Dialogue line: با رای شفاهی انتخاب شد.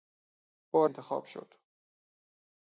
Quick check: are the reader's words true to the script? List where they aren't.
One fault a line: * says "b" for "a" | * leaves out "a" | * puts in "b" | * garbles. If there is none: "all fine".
* leaves out "رای شفاهی"